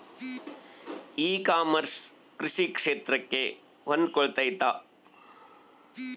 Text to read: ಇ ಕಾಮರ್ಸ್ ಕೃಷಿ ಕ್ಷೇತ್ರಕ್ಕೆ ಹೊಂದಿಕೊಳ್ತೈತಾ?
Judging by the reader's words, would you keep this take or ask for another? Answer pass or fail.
pass